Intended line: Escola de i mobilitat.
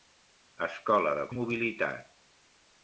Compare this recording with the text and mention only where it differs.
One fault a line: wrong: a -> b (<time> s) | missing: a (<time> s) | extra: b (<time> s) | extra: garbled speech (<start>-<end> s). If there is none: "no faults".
no faults